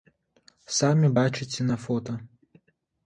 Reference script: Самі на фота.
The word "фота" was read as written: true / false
true